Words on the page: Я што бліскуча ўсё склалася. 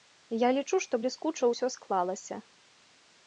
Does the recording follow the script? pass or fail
fail